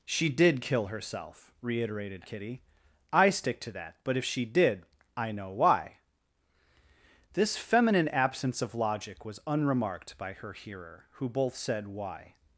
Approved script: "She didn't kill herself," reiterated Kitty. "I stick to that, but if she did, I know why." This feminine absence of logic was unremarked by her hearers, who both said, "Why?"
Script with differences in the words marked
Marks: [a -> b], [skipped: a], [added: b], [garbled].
"She [didn't -> did] kill herself," reiterated Kitty. "I stick to that, but if she did, I know why." This feminine absence of logic was unremarked by her [hearers, -> hearer] who both said, "Why?"